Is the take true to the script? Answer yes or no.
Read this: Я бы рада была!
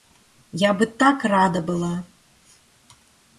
no